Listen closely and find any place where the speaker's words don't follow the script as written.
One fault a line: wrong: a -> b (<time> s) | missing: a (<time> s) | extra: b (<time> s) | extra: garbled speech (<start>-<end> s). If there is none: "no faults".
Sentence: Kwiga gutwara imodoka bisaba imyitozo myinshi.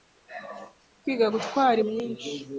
missing: imodoka bisaba imyitozo (1.8 s)